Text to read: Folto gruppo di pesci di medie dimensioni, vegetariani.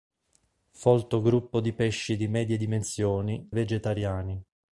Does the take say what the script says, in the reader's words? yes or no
yes